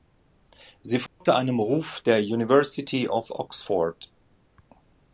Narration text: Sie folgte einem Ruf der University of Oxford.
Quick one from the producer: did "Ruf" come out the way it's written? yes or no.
yes